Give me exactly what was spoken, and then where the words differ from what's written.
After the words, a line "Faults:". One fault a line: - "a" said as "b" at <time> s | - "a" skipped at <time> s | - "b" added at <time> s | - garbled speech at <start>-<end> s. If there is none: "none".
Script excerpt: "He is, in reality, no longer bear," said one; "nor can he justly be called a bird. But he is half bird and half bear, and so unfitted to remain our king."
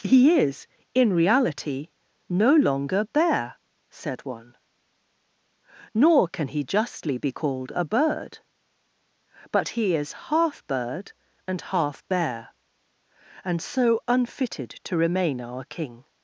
"He is, in reality, no longer bear," said one; "nor can he justly be called a bird. But he is half bird and half bear, and so unfitted to remain our king."
Faults:
none